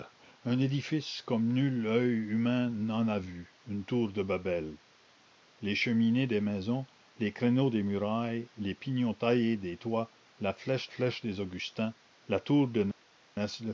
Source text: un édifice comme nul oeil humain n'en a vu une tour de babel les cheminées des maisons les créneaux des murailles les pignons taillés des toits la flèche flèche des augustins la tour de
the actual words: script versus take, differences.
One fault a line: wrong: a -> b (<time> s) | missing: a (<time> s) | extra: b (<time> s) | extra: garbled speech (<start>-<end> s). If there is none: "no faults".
no faults